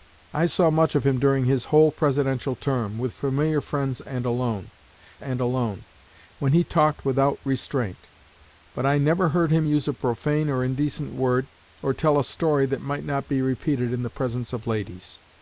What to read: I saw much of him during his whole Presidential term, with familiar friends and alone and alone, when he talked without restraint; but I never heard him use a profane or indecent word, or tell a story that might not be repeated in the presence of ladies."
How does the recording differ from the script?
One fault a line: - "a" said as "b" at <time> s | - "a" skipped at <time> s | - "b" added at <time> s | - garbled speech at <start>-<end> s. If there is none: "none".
none